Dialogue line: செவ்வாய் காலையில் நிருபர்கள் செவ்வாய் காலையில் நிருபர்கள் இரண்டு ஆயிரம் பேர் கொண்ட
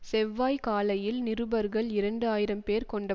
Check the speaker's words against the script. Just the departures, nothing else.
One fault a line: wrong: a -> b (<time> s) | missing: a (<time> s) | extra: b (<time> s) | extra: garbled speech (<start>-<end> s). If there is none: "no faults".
missing: செவ்வாய் காலையில் நிருபர்கள் (1.9 s)